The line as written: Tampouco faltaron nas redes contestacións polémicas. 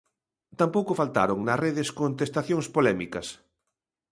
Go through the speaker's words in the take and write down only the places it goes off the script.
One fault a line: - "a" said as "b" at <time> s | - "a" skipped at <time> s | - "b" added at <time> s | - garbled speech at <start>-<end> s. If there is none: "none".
none